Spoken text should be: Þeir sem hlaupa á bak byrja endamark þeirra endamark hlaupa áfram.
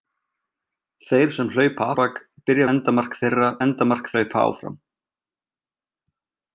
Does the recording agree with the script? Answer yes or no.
yes